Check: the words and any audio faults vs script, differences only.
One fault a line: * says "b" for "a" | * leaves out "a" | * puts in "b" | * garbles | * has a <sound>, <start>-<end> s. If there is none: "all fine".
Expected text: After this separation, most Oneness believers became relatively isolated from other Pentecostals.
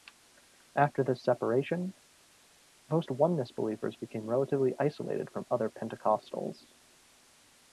all fine